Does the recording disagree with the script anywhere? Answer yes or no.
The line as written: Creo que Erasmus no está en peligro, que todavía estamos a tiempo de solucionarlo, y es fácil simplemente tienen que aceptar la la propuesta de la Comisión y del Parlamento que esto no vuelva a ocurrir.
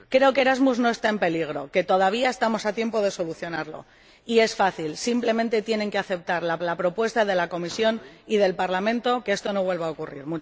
no